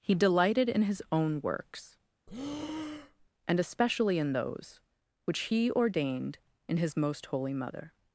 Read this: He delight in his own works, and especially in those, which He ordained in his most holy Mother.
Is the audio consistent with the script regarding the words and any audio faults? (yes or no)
no